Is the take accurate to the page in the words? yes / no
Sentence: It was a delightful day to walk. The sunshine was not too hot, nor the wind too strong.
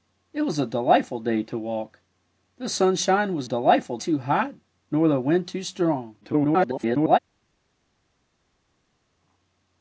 no